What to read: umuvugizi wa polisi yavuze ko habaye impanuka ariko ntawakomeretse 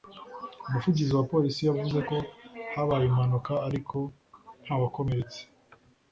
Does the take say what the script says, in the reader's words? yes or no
yes